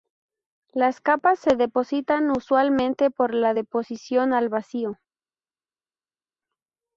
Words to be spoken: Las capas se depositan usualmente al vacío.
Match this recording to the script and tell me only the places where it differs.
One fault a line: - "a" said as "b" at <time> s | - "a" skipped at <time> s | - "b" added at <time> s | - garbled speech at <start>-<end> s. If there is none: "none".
- "por la deposición" added at 3.1 s